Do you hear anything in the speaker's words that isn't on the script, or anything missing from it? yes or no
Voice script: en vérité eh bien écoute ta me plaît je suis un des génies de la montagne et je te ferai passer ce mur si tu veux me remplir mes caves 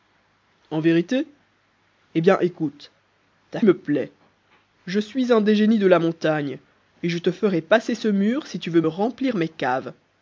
no